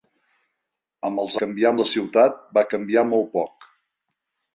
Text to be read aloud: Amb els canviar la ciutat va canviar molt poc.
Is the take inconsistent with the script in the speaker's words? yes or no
no